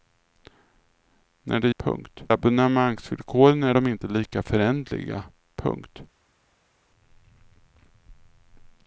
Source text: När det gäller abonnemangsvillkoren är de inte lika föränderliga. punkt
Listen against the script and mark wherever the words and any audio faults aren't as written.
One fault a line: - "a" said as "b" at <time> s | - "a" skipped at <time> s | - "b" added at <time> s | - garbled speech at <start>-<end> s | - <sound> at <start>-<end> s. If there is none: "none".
- "gäller" said as "punkt" at 1.8 s